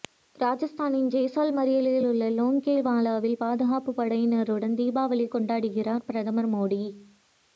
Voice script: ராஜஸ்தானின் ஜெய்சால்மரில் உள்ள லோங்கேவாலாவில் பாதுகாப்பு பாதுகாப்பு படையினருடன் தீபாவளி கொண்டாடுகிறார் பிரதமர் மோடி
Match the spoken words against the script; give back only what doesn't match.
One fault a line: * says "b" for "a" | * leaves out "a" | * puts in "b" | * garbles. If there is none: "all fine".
* leaves out "பாதுகாப்பு"